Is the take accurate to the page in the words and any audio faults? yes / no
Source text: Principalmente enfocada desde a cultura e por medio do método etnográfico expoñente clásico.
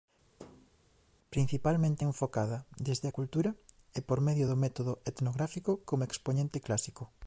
no